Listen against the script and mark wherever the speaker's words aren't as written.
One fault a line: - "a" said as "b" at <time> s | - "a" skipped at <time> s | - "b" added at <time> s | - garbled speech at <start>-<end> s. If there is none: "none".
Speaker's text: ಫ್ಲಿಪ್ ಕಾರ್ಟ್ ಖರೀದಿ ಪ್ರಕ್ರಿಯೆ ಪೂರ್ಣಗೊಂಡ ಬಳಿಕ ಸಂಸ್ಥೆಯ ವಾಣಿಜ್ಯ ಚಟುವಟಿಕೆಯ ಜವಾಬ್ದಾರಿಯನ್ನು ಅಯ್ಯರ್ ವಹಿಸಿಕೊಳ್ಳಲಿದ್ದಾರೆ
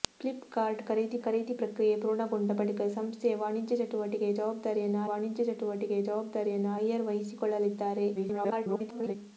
- "ಖರೀದಿ" added at 1.2 s
- "ವಾಣಿಜ್ಯ ಚಟುವಟಿಕೆಯ ಜವಾಬ್ದಾರಿಯನ್ನು" added at 5.1 s
- garbled speech at 8.1-9.2 s